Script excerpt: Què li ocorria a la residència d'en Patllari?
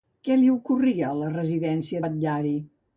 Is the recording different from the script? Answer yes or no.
yes